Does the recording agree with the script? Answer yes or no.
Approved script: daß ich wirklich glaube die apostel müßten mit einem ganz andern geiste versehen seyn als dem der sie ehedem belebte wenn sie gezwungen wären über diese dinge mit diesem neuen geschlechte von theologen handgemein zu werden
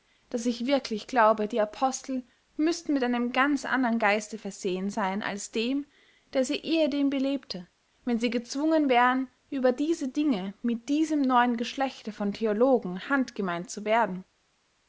yes